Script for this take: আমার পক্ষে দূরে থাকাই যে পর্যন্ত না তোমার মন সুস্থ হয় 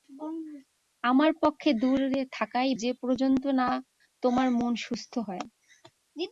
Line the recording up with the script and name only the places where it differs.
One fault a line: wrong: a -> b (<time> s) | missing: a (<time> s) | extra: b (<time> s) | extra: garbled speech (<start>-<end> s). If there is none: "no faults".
no faults